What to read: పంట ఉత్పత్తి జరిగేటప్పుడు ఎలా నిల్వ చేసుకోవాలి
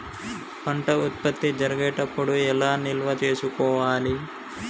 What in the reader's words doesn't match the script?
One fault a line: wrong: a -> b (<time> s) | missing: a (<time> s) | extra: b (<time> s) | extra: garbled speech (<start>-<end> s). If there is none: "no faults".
no faults